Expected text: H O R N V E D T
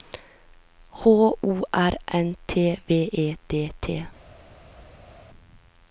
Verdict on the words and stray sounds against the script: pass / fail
fail